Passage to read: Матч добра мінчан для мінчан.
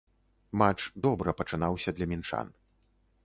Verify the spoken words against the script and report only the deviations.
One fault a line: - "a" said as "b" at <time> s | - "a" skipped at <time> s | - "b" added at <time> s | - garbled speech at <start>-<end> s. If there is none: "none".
- "мінчан" said as "пачынаўся" at 1.4 s